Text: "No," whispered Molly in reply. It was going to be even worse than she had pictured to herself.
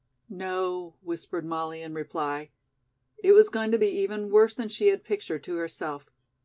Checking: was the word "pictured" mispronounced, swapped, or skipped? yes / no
no